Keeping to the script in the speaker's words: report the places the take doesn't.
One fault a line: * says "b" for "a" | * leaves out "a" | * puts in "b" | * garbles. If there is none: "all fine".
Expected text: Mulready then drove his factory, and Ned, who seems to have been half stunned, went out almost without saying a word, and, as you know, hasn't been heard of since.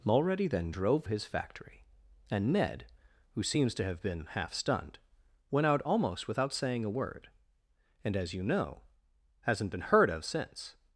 all fine